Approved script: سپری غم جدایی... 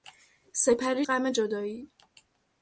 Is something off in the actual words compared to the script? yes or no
no